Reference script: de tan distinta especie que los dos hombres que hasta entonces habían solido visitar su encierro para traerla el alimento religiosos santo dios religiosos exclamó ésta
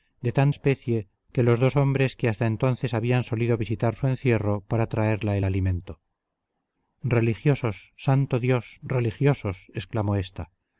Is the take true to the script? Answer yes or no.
no